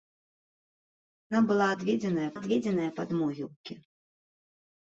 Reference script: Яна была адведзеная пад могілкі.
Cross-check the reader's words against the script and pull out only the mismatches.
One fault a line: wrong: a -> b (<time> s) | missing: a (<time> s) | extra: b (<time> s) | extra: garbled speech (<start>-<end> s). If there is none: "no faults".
extra: адведзеная (2.4 s)